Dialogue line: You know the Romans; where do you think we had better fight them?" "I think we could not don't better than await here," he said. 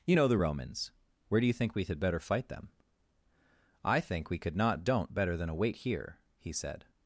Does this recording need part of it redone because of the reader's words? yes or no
no